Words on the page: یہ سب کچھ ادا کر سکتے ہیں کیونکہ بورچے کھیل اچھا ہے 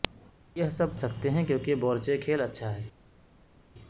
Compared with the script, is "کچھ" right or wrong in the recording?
wrong